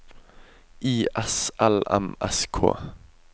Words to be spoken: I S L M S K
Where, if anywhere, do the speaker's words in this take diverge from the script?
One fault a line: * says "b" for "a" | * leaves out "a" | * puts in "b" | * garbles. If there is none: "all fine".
all fine